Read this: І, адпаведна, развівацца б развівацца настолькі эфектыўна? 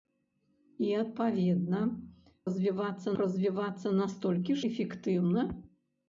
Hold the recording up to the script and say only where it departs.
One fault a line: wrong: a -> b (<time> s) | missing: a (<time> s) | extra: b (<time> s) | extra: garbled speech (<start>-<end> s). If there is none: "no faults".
no faults